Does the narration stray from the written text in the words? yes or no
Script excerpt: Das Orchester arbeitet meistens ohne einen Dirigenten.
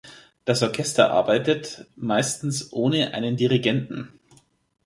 no